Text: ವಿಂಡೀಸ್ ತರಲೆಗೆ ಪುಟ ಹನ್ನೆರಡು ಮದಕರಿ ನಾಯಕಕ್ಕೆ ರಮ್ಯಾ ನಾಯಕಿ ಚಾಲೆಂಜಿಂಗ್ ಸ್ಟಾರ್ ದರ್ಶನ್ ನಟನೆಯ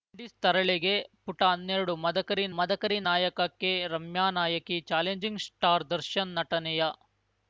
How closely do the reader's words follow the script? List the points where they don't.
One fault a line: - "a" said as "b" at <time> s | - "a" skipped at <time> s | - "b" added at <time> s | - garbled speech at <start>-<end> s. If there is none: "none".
- "ಮದಕರಿ" added at 2.5 s